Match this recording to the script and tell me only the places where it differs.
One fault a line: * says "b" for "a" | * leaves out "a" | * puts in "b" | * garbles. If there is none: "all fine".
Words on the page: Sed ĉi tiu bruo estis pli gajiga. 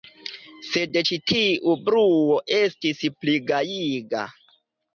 all fine